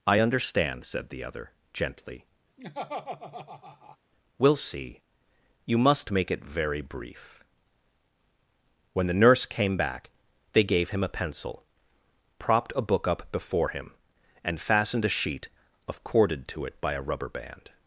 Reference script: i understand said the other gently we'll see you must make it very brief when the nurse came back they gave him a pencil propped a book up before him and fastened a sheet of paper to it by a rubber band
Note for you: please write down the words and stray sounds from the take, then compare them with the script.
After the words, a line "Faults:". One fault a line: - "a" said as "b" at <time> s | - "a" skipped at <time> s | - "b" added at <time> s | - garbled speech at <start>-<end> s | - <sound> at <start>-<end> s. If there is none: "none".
i understand said the other gently we'll see you must make it very brief when the nurse came back they gave him a pencil propped a book up before him and fastened a sheet of corded to it by a rubber band
Faults:
- laugh at 2.6-4.0 s
- "paper" said as "corded" at 16.0 s